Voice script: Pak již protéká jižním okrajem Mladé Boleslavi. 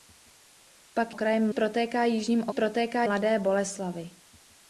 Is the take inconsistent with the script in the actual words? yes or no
yes